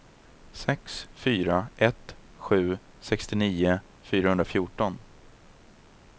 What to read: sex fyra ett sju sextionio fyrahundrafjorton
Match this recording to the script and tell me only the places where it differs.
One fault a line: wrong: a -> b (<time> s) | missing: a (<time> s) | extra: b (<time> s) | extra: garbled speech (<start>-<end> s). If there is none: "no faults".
no faults